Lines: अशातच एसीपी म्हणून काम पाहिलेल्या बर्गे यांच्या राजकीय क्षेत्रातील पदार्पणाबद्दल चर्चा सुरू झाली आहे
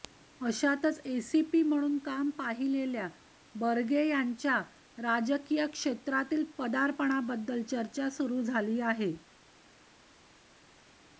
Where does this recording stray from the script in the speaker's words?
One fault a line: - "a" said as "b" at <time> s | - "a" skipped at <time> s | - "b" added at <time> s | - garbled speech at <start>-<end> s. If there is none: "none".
none